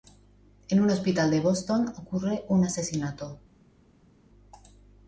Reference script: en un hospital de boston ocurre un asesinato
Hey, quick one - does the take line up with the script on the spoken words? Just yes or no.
yes